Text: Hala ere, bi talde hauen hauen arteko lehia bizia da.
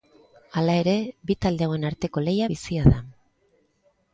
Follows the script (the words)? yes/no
no